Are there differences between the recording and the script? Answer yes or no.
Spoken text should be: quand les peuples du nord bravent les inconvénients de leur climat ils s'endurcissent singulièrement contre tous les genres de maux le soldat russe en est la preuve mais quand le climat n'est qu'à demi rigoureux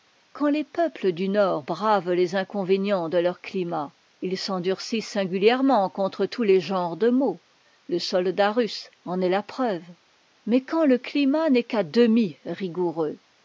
no